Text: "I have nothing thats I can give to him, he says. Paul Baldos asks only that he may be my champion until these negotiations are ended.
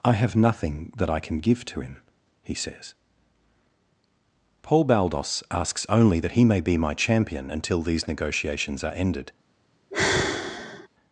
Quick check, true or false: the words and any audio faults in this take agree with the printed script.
false